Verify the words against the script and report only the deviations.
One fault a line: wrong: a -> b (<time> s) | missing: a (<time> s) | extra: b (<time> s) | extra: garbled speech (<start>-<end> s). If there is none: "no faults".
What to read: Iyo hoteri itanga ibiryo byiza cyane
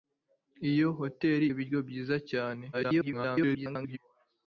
missing: itanga (1.5 s)
extra: garbled speech (2.7-4.0 s)